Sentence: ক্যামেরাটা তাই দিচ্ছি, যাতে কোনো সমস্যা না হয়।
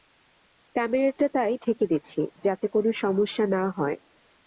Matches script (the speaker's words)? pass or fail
fail